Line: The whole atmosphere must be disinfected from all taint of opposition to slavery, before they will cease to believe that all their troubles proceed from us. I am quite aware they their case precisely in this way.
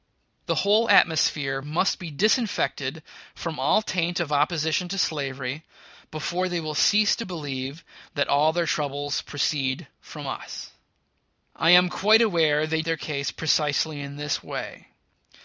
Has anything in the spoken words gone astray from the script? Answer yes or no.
no